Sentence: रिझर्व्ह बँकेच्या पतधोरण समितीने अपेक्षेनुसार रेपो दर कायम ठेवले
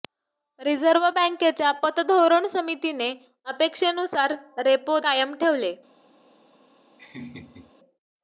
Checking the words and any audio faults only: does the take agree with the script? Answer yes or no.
no